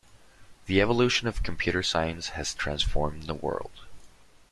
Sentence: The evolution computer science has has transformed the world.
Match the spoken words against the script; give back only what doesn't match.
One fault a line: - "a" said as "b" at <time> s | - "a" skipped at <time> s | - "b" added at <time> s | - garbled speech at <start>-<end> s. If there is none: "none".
- "of" added at 1.3 s
- "has" skipped at 2.5 s